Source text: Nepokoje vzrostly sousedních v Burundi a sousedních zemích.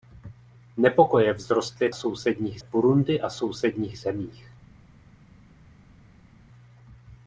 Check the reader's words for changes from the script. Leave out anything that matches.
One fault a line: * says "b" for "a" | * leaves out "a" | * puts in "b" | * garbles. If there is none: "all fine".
all fine